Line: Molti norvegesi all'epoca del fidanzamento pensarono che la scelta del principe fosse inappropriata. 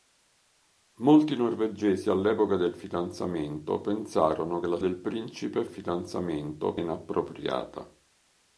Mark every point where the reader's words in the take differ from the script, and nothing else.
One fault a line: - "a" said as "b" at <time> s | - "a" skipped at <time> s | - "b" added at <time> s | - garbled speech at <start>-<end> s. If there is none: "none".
- "scelta" skipped at 4.8 s
- "fosse" said as "fidanzamento" at 5.7 s